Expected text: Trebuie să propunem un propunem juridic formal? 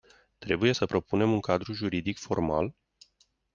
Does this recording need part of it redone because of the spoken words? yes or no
yes